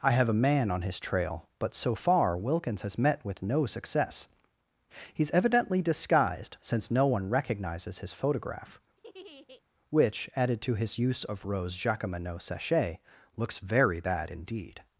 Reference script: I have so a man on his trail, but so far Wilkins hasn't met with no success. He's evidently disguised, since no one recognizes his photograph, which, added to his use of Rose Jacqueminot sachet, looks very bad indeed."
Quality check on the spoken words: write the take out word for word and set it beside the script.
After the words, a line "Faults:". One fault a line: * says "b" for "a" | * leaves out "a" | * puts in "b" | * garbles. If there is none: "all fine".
I have a man on his trail, but so far Wilkins has met with no success. He's evidently disguised, since no one recognizes his photograph, which, added to his use of Rose Jacqueminot sachet, looks very bad indeed."
Faults:
* leaves out "so"
* says "has" for "hasn't"